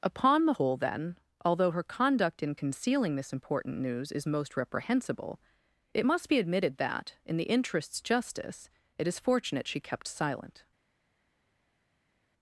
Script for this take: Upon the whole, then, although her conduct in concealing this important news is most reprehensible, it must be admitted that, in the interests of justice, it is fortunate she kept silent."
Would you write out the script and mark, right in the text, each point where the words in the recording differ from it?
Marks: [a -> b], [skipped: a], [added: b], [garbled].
Upon the whole, then, although her conduct in concealing this important news is most reprehensible, it must be admitted that, in the interests [skipped: of] justice, it is fortunate she kept silent."